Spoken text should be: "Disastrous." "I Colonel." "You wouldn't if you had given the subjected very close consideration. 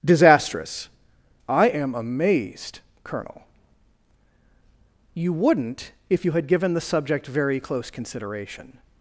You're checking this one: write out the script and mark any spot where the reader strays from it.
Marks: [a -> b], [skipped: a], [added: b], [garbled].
"Disastrous." "I [added: am amazed] Colonel." "You wouldn't if you had given the [subjected -> subject] very close consideration.